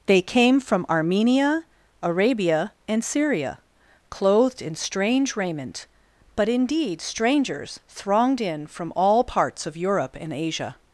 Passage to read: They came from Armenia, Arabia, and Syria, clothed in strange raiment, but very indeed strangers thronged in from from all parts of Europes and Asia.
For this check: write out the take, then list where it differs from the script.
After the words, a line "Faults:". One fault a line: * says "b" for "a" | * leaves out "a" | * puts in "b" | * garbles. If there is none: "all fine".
They came from Armenia, Arabia, and Syria, clothed in strange raiment, but indeed strangers thronged in from all parts of Europe and Asia.
Faults:
* leaves out "very"
* leaves out "from"
* says "Europe" for "Europes"